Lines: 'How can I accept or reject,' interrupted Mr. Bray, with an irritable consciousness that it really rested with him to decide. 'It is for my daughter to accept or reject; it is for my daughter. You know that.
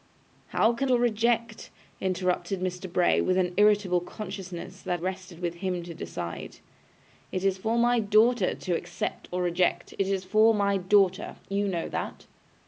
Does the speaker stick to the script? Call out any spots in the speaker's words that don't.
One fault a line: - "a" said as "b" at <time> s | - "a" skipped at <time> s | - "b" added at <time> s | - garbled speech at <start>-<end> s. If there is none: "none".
- "I accept" skipped at 0.9 s
- "it really" skipped at 5.0 s